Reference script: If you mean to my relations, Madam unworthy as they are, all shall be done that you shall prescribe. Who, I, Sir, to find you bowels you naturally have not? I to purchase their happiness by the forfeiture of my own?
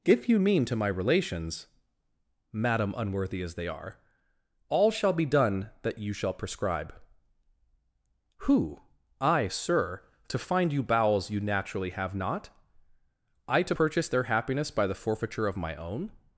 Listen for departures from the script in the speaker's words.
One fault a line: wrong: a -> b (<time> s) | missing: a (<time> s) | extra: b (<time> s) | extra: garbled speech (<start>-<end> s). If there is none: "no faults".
no faults